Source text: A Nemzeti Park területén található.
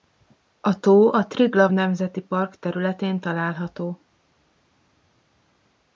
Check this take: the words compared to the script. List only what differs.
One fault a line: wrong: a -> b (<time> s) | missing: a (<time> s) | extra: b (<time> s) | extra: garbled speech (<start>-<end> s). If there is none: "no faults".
extra: tó a Triglav (0.8 s)